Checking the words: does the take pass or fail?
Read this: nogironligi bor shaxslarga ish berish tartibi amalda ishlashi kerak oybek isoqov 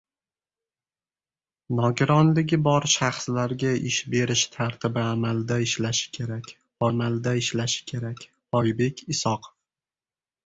fail